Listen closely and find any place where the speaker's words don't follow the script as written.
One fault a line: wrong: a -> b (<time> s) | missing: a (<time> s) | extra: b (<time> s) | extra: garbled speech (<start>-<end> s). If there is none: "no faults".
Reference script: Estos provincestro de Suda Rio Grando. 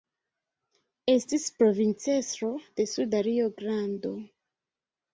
wrong: Estos -> Estis (1.1 s)